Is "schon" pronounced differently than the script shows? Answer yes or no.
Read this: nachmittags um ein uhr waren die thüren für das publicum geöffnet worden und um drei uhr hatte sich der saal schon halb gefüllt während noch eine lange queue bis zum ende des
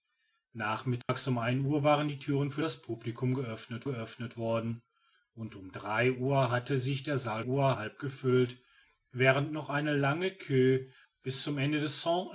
yes